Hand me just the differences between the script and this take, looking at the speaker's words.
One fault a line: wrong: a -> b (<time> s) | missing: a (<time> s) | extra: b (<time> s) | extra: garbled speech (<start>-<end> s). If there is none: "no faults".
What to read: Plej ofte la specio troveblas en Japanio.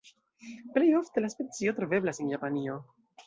no faults